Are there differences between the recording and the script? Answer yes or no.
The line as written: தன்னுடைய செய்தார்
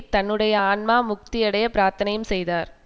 yes